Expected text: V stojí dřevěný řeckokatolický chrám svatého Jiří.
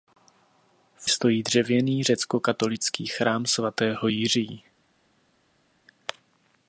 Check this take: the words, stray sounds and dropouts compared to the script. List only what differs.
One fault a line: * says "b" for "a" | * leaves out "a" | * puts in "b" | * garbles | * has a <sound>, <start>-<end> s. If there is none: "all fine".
all fine